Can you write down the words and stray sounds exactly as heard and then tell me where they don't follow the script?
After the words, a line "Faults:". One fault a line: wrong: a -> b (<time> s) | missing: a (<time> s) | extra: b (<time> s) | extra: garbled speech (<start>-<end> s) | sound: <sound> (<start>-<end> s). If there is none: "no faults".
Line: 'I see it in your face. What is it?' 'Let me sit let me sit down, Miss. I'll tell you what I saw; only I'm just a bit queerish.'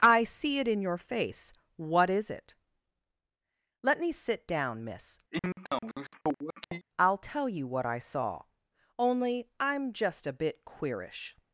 'I see it in your face. What is it?' 'Let me sit down, Miss. I'll tell you what I saw; only I'm just a bit queerish.'
Faults:
missing: let me sit (4.5 s)
sound: sniff (5.3-6.9 s)